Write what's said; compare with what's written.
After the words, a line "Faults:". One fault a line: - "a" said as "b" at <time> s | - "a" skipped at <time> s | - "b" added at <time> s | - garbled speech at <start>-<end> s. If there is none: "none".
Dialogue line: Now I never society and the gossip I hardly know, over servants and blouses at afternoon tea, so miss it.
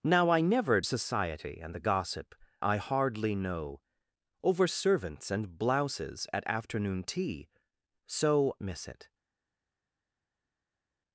Now I never society and the gossip I hardly know, over servants and blouses at afternoon tea, so miss it.
Faults:
none